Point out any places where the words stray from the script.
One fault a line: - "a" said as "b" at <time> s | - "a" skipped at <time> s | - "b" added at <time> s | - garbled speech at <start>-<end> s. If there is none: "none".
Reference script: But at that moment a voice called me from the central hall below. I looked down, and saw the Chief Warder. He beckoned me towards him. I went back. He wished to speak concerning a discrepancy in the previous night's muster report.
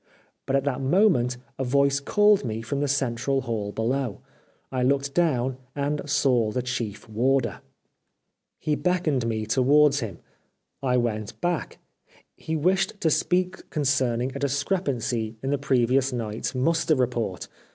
none